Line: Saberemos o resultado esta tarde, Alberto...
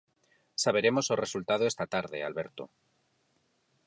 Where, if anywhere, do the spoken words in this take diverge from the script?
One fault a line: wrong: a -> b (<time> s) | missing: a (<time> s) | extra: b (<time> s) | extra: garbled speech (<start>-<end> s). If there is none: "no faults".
no faults